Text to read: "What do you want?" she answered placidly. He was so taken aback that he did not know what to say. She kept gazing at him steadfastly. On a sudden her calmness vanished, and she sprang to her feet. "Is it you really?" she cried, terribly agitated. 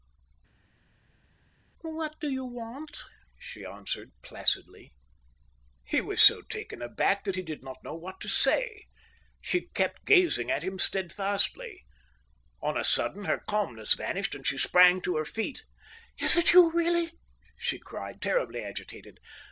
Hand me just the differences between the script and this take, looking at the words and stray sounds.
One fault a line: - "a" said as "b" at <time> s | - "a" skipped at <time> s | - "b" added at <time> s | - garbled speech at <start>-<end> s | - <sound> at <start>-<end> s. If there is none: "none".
none